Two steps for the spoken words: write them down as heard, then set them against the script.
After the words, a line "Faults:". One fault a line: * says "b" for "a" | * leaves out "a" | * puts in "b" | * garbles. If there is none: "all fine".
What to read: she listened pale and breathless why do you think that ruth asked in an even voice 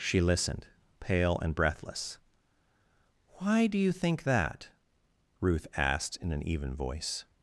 she listened pale and breathless why do you think that ruth asked in an even voice
Faults:
all fine